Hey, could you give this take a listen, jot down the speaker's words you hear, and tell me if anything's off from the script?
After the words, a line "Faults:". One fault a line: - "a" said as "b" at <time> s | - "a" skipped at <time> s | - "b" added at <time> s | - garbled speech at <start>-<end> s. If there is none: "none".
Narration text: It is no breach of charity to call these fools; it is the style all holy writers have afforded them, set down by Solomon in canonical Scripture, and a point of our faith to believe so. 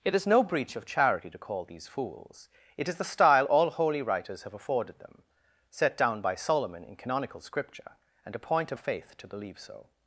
It is no breach of charity to call these fools; it is the style all holy writers have afforded them, set down by Solomon in canonical Scripture, and a point of faith to believe so.
Faults:
- "our" skipped at 8.8 s